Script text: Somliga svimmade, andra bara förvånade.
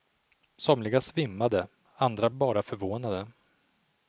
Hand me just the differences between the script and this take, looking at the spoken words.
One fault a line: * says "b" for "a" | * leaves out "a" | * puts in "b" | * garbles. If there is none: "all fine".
all fine